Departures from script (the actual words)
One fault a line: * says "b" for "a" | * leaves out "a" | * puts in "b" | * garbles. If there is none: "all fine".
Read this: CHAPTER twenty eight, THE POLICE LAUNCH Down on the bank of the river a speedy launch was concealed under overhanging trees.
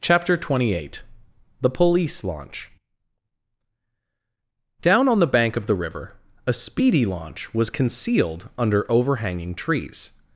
all fine